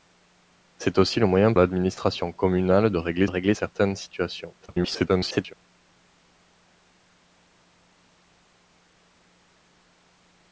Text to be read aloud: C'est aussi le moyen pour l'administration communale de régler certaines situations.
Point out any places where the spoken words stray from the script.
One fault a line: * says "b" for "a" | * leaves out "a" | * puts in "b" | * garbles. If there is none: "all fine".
* leaves out "pour"
* puts in "régler"
* garbles